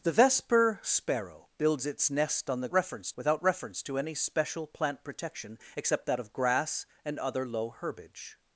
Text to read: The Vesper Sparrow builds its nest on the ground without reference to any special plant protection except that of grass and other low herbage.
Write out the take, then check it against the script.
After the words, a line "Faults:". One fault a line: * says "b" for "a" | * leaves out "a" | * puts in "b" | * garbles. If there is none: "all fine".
The Vesper Sparrow builds its nest on the reference without reference to any special plant protection except that of grass and other low herbage.
Faults:
* says "reference" for "ground"